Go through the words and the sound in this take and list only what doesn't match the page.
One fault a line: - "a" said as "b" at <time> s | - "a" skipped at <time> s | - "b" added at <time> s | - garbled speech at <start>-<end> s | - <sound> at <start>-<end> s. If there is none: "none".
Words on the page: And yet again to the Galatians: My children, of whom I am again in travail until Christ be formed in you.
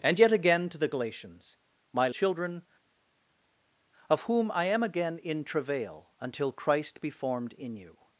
none